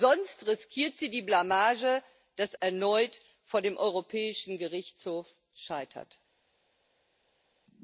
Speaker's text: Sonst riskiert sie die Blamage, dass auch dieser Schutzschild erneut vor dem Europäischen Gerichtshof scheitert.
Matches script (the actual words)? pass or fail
fail